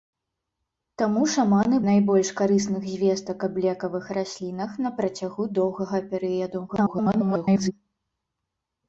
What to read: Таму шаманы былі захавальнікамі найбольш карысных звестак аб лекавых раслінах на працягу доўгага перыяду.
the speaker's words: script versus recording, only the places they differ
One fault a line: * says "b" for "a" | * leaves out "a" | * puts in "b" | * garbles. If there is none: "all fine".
* leaves out "былі захавальнікамі"
* garbles